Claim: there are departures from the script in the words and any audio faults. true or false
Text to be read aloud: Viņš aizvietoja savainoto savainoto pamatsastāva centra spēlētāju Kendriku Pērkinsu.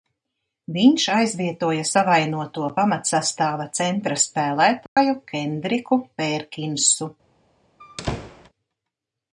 true